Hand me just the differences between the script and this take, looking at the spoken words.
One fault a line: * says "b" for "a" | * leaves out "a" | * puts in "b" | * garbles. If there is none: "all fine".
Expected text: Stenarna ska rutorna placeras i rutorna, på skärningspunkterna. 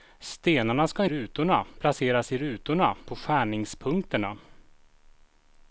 all fine